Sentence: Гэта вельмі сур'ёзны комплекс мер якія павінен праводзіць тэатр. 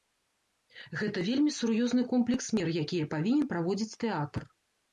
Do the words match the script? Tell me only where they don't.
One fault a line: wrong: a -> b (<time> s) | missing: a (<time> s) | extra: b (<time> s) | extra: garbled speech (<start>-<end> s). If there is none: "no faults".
no faults